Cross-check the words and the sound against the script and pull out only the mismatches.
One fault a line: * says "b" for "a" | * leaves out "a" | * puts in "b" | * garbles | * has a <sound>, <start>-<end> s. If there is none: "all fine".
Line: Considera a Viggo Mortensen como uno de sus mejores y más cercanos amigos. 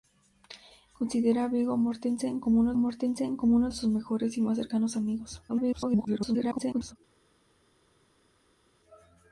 * puts in "Mortensen como uno"
* garbles